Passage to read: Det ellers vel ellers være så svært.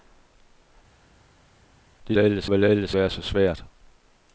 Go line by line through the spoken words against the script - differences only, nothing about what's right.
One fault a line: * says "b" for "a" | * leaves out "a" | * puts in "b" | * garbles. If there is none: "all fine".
all fine